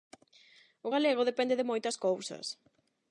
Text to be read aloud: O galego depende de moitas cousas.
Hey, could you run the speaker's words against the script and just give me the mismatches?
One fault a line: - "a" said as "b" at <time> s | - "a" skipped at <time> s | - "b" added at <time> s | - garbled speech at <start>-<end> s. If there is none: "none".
none